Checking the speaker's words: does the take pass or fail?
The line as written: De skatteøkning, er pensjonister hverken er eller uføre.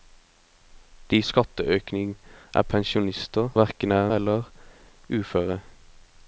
pass